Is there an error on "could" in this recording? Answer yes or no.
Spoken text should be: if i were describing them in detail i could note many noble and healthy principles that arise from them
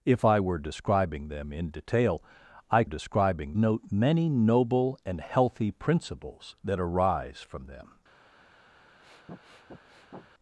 yes